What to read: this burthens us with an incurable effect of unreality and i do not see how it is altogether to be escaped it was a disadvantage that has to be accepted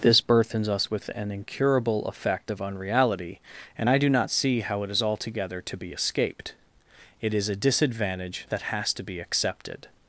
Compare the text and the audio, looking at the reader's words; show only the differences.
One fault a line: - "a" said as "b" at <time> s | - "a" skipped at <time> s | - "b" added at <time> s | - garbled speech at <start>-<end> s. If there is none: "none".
- "was" said as "is" at 7.3 s